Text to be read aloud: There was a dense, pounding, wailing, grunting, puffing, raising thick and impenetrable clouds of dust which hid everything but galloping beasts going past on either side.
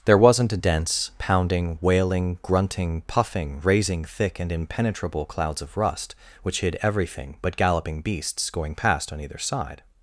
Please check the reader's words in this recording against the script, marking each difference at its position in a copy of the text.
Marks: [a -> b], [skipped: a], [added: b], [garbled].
There [was -> wasn't] a dense, pounding, wailing, grunting, puffing, raising thick and impenetrable clouds of [dust -> rust] which hid everything but galloping beasts going past on either side.